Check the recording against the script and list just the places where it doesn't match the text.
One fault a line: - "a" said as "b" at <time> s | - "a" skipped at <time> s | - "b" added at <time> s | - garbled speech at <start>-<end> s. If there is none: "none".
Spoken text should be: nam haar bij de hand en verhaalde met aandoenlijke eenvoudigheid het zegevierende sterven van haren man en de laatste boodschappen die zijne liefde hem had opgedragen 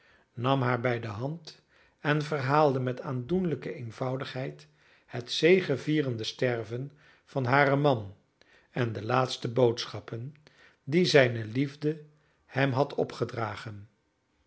none